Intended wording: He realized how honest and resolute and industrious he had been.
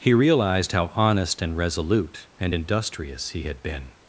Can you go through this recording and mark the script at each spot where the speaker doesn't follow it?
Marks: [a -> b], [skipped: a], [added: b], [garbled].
He realized how honest and resolute and industrious he had been.